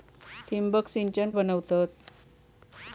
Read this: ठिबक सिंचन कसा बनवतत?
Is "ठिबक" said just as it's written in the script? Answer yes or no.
yes